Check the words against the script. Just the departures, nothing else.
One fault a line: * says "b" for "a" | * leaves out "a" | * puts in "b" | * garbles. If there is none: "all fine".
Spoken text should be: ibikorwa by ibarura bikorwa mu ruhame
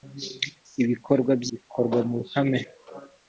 * leaves out "ibarura"